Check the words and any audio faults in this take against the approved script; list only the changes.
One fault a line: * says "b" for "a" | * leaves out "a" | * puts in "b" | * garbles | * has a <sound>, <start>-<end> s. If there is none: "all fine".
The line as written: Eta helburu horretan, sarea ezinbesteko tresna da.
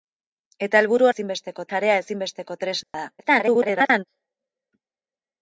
* says "ezinbesteko" for "horretan"
* has a dropout, 2.8-2.9 s
* garbles